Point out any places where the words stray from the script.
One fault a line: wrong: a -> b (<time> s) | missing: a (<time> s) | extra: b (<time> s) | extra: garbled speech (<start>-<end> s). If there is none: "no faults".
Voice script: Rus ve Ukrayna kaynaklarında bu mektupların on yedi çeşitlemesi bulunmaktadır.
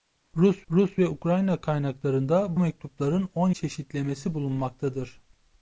extra: rus (0.7 s)
missing: bu (2.6 s)
missing: yedi (3.5 s)